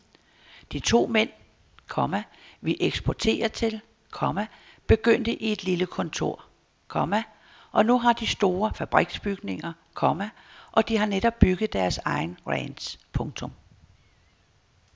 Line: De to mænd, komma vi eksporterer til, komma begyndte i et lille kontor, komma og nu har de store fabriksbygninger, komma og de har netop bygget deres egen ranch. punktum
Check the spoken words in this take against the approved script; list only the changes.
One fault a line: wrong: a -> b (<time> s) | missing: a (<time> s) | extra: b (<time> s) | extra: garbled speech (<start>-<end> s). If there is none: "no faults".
no faults